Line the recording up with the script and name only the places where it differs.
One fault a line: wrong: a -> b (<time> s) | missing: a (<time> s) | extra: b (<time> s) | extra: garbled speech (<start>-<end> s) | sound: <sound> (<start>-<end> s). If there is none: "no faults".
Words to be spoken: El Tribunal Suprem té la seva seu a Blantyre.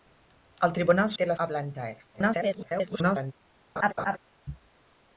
missing: Suprem (1.1 s)
missing: seva seu (1.4 s)
extra: garbled speech (2.1-3.3 s)
sound: laugh (3.8-4.2 s)